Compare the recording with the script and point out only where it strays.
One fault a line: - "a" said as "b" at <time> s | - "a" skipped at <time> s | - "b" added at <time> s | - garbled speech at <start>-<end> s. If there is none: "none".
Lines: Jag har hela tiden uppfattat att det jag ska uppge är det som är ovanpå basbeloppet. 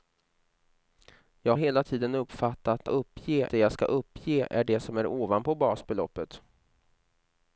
- "har" skipped at 1.6 s
- "att" said as "uppge" at 2.9 s